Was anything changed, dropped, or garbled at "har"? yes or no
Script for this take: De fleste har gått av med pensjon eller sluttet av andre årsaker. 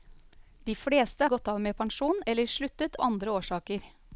yes